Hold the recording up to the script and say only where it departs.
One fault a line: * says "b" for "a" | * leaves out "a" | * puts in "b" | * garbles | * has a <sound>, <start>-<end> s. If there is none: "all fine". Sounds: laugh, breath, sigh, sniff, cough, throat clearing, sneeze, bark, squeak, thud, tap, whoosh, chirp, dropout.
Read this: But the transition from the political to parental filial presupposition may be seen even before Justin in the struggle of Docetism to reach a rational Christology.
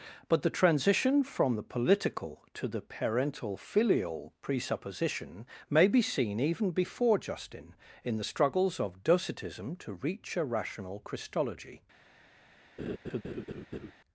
* puts in "the"
* says "struggles" for "struggle"
* has a laugh, 12.8-13.9 s